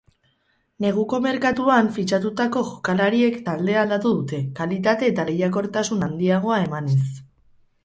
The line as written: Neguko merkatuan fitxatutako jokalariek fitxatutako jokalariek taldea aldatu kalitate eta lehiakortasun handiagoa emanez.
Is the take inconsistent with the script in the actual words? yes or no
yes